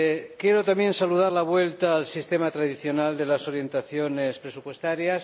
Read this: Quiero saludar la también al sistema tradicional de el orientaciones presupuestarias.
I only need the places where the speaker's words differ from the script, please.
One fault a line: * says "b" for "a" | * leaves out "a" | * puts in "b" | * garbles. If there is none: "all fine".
* puts in "también"
* says "vuelta" for "también"
* says "las" for "el"